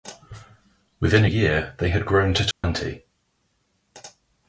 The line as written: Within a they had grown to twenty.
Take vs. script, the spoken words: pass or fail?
fail